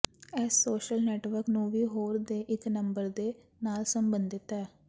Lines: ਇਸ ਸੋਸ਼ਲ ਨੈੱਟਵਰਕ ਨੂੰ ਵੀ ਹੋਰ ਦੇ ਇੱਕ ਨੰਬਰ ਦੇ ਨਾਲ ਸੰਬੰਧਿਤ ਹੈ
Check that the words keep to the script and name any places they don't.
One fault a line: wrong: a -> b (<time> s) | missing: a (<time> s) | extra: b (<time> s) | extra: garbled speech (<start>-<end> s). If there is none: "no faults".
no faults